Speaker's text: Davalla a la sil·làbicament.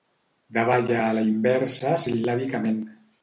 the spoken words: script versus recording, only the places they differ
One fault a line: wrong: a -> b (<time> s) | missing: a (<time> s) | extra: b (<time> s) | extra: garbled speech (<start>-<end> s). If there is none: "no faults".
extra: inversa (1.3 s)